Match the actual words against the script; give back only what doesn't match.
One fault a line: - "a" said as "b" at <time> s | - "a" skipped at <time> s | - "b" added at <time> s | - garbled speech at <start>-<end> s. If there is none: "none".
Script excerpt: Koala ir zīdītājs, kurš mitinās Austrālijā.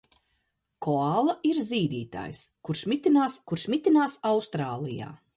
- "kurš mitinās" added at 3.5 s